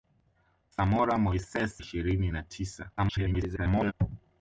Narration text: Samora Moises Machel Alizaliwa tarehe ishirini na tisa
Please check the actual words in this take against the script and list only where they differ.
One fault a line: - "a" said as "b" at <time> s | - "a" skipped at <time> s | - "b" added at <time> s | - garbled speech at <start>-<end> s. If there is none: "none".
- "Machel Alizaliwa tarehe" skipped at 1.8 s
- garbled speech at 3.0-3.9 s